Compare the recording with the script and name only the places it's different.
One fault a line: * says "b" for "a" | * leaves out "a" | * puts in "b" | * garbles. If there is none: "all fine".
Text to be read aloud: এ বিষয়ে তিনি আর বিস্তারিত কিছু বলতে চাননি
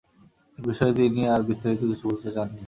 all fine